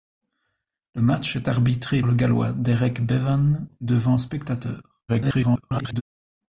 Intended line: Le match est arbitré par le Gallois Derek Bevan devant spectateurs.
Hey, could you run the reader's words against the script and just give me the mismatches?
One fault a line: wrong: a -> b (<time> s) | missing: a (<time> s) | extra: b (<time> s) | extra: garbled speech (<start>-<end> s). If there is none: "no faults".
missing: par (2.0 s)
extra: garbled speech (5.1-6.0 s)